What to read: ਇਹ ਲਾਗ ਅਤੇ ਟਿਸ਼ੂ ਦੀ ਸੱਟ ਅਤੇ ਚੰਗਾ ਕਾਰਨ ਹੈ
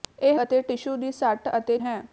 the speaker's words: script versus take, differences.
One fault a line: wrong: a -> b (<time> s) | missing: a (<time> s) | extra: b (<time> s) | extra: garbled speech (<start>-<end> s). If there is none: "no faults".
missing: ਲਾਗ (0.4 s)
missing: ਚੰਗਾ ਕਾਰਨ (1.8 s)